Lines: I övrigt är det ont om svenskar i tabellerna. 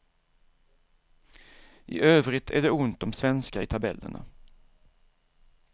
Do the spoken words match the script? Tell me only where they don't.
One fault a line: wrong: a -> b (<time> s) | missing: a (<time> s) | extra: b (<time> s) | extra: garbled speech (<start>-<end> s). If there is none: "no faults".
no faults